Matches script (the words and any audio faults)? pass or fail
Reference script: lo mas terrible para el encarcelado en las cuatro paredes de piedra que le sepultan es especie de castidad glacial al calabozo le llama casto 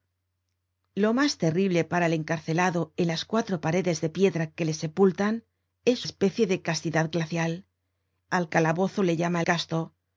pass